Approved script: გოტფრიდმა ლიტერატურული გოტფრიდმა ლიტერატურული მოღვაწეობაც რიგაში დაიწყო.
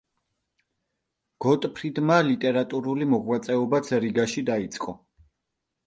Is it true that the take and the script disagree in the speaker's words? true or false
true